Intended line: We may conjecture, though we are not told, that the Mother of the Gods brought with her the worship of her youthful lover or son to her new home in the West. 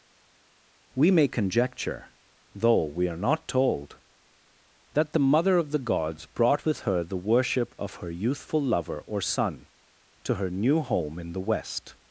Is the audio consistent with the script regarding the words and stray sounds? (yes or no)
yes